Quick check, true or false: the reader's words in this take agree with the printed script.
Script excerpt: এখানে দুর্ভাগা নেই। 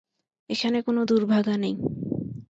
false